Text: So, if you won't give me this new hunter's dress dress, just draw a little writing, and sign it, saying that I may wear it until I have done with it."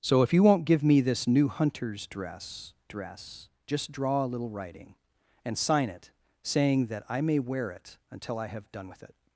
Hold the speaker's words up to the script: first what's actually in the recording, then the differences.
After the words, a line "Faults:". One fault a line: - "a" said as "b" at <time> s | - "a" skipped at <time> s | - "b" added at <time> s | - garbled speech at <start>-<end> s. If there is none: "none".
So, if you won't give me this new hunter's dress dress, just draw a little writing, and sign it, saying that I may wear it until I have done with it."
Faults:
none